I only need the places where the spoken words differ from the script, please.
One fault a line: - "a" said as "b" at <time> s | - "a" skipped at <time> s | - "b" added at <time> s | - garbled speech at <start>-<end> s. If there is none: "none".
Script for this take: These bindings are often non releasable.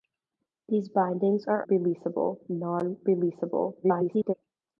- "often" said as "releasable" at 1.7 s
- garbled speech at 3.8-4.3 s